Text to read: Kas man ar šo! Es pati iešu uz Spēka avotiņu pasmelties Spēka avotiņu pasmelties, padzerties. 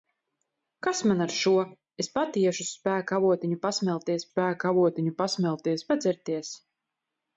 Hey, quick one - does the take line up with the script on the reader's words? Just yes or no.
yes